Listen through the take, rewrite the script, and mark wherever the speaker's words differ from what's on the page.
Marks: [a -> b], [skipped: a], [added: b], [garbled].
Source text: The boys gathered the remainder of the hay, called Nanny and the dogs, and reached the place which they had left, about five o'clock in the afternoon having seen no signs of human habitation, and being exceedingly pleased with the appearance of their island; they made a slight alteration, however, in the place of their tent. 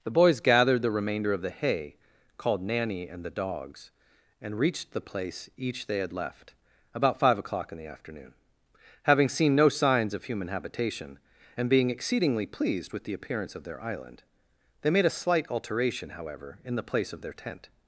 The boys gathered the remainder of the hay, called Nanny and the dogs, and reached the place [which -> each] they had left, about five o'clock in the afternoon having seen no signs of human habitation, and being exceedingly pleased with the appearance of their island; they made a slight alteration, however, in the place of their tent.